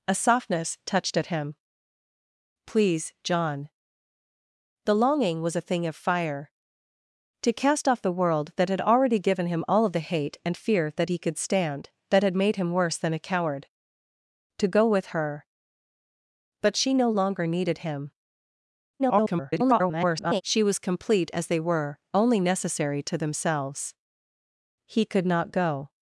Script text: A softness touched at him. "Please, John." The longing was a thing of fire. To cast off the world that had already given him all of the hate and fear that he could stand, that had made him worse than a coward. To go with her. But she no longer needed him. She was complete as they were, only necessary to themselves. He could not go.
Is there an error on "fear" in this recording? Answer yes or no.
no